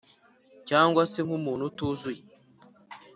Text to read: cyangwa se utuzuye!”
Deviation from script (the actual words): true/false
true